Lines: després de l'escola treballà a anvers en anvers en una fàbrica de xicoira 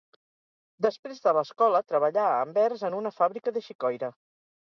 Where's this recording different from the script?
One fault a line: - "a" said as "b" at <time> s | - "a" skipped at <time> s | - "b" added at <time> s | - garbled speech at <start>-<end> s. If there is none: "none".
- "anvers en" skipped at 3.0 s